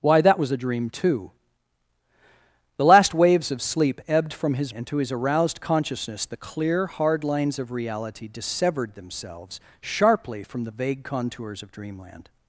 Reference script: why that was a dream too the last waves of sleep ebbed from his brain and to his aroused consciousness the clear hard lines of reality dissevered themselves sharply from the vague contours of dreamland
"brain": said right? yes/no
no